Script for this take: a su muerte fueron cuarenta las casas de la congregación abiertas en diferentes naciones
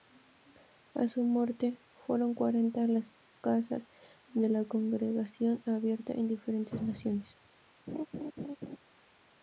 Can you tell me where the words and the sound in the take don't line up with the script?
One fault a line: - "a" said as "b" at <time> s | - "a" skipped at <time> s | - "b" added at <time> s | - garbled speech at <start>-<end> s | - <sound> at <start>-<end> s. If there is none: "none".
- laugh at 7.9-8.8 s